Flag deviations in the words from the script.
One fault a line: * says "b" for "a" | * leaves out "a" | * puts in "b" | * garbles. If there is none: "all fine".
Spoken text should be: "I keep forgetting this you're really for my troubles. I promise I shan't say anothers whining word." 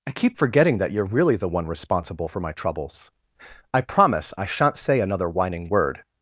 * says "that" for "this"
* puts in "the one responsible"
* says "another" for "anothers"